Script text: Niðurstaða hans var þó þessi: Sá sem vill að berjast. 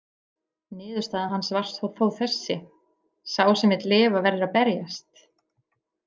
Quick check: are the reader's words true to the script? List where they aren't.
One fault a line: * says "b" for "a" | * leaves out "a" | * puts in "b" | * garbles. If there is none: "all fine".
* puts in "lifa verður"